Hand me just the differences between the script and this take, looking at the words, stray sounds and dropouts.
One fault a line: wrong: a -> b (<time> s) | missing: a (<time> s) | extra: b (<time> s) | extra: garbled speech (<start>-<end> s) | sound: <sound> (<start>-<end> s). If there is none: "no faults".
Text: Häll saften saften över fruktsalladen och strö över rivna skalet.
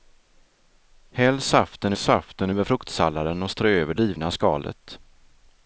no faults